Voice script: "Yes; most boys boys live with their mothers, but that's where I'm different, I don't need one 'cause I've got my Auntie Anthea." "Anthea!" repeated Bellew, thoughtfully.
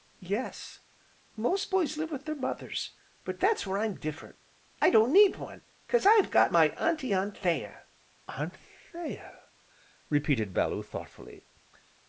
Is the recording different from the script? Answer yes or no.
yes